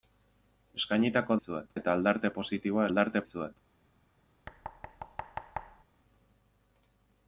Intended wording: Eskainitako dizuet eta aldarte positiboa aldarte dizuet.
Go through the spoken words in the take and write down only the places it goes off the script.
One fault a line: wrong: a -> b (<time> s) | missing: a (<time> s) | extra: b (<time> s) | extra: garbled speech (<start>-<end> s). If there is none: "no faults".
no faults